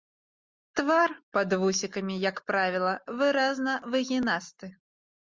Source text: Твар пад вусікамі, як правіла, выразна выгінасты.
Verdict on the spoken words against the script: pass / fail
pass